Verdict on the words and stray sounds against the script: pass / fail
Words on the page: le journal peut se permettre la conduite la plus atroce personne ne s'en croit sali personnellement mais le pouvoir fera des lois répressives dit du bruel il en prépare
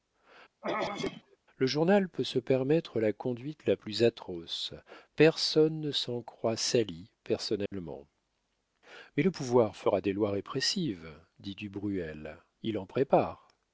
fail